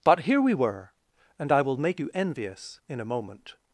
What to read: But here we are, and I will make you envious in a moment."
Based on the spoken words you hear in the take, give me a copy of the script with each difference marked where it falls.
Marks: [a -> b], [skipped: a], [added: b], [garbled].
But here we [are, -> were] and I will make you envious in a moment."